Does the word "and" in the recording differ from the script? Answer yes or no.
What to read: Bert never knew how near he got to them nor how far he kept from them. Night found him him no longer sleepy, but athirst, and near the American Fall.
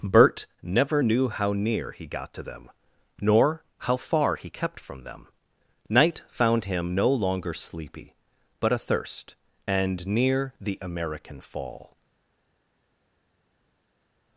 no